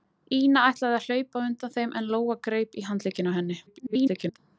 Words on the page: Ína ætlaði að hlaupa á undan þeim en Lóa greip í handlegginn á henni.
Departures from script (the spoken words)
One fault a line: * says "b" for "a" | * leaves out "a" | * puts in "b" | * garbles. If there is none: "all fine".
* garbles